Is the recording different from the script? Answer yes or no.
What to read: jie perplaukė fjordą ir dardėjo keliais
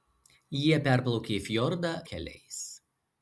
yes